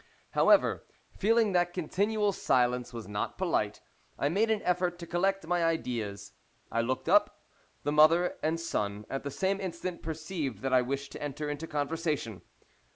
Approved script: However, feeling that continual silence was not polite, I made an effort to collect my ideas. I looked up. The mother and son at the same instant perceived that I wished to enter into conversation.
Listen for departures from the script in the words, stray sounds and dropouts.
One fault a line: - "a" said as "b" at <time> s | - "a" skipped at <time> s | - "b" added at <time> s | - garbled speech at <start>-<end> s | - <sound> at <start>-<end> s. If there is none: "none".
none